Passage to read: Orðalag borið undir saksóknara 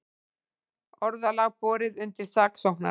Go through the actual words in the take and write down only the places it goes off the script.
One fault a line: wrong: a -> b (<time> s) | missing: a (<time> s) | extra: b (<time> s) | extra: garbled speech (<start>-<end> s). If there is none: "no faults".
no faults